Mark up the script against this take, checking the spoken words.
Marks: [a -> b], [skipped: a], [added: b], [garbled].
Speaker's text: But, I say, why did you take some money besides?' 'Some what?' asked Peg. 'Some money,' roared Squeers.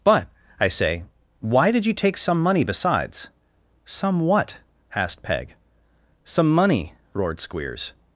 But, I say, why did you take some money besides?' 'Some what?' asked Peg. 'Some money,' roared Squeers.